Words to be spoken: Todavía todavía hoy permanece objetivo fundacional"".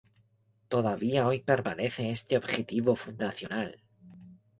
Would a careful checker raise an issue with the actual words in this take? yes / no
yes